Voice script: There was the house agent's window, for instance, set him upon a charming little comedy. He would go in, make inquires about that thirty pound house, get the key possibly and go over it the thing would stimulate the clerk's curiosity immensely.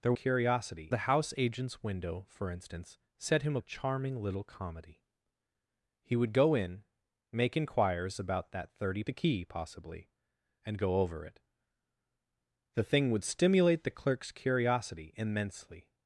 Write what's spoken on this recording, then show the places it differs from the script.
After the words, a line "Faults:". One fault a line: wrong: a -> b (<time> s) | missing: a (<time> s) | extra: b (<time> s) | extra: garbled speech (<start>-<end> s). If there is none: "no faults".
There curiosity the house agent's window, for instance, set him a charming little comedy. He would go in, make inquires about that thirty the key possibly and go over it the thing would stimulate the clerk's curiosity immensely.
Faults:
wrong: was -> curiosity (0.1 s)
missing: upon (3.6 s)
missing: pound house get (9.0 s)